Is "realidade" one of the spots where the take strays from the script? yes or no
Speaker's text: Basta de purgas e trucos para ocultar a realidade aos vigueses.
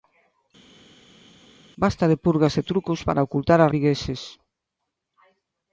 yes